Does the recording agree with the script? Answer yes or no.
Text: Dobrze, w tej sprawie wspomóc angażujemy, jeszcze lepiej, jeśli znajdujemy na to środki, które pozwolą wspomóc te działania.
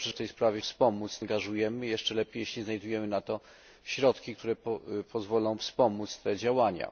yes